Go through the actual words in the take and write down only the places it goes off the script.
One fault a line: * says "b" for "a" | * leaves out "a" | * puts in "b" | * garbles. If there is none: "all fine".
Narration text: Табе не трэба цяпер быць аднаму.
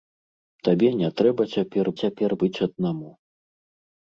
* puts in "цяпер"